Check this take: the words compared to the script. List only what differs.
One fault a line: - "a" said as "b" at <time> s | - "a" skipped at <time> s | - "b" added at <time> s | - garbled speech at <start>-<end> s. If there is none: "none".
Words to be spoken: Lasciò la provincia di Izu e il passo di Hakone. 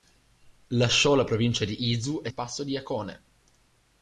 none